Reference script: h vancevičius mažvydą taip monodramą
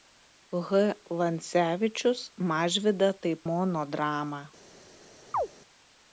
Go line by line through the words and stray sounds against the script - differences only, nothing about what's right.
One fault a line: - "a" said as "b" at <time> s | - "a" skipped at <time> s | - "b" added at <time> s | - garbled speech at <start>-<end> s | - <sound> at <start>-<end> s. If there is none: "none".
- chirp at 5.3-5.5 s